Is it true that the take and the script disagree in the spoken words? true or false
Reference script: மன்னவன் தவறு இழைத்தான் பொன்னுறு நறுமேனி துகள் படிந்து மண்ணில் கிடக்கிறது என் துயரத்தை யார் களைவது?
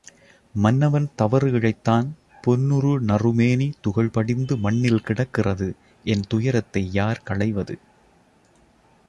false